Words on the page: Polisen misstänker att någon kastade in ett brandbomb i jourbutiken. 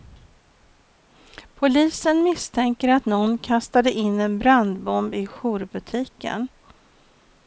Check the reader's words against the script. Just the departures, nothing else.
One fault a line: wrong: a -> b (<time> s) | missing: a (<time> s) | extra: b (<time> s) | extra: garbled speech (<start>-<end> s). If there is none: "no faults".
wrong: ett -> en (4.2 s)